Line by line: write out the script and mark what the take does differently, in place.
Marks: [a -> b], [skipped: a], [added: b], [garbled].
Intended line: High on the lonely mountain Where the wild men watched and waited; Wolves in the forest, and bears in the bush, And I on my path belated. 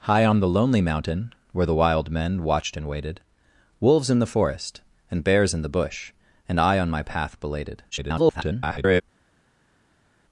High on the lonely mountain Where the wild men watched and waited; Wolves in the forest, and bears in the bush, And I on my path belated. [garbled]